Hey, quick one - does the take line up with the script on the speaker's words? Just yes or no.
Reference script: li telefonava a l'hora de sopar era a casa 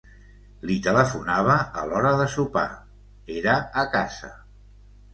yes